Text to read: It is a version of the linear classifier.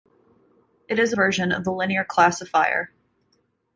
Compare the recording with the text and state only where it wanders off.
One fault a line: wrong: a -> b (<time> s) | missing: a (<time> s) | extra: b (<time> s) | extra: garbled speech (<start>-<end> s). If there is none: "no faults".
no faults